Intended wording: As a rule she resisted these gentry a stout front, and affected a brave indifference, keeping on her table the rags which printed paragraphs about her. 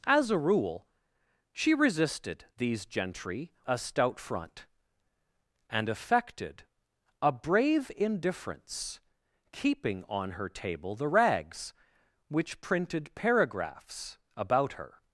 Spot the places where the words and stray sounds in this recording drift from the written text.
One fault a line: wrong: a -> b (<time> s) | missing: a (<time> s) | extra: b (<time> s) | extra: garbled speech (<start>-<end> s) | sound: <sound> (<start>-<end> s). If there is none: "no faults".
no faults